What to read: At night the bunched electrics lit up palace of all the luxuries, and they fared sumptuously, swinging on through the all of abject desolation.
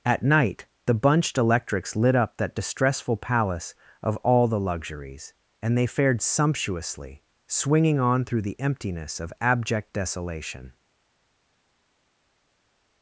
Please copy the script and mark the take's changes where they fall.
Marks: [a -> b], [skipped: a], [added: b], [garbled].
At night the bunched electrics lit up [added: that distressful] palace of all the luxuries, and they fared sumptuously, swinging on through the [all -> emptiness] of abject desolation.